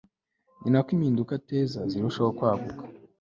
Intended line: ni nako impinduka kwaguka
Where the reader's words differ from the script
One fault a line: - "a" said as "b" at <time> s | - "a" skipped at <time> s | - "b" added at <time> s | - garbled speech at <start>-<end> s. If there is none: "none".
- "ateza zirushaho" added at 1.4 s